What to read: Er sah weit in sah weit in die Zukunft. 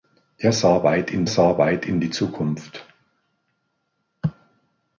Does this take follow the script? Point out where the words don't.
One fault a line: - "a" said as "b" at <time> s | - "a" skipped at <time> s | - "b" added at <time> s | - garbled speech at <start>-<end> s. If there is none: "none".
none